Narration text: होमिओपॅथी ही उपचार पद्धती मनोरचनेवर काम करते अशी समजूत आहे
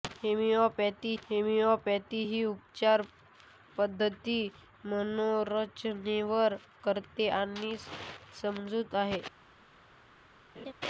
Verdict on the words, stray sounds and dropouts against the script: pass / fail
fail